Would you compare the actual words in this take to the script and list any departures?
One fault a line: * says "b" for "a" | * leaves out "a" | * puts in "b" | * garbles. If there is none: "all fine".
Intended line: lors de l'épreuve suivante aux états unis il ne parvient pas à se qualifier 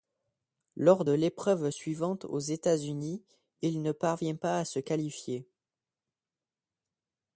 all fine